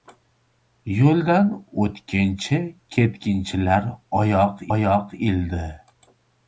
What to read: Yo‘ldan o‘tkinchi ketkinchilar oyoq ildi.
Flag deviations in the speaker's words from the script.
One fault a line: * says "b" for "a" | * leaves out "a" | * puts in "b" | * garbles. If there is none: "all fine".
* puts in "oyoq"